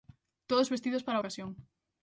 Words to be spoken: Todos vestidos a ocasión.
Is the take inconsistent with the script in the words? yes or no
yes